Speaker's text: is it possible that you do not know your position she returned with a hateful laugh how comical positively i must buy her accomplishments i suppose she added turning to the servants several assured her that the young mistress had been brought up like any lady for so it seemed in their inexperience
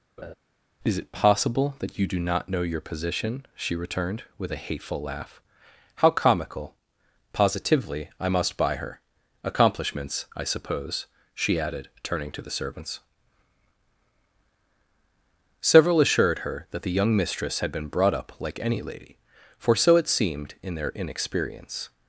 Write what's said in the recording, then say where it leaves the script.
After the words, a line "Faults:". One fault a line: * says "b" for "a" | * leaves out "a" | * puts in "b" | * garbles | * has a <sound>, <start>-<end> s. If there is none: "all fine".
is it possible that you do not know your position she returned with a hateful laugh how comical positively i must buy her accomplishments i suppose she added turning to the servants several assured her that the young mistress had been brought up like any lady for so it seemed in their inexperience
Faults:
* has a laugh, 0.2-0.3 s